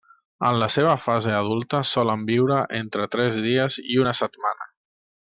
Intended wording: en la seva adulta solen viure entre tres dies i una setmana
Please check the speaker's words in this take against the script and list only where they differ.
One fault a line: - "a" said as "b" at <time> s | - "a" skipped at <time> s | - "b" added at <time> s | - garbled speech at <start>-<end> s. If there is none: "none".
- "fase" added at 1.1 s